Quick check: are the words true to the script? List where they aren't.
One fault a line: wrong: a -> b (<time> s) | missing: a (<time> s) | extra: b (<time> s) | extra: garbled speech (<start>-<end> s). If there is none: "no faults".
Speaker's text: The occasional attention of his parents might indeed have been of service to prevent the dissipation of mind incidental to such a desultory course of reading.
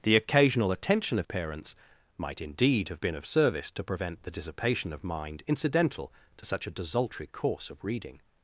missing: his (1.3 s)